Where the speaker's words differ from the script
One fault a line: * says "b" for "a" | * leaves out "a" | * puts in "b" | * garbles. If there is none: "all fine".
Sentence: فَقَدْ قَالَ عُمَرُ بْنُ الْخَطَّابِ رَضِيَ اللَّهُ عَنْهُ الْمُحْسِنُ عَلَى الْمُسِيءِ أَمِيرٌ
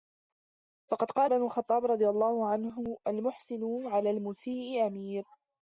* leaves out "عُمَرُ"